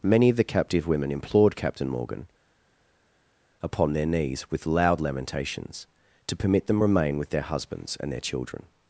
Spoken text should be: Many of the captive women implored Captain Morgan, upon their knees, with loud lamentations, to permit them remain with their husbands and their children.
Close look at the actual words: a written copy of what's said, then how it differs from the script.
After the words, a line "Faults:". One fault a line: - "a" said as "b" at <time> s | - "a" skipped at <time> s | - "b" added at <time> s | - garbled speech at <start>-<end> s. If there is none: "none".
Many of the captive women implored Captain Morgan, upon their knees, with loud lamentations, to permit them remain with their husbands and their children.
Faults:
none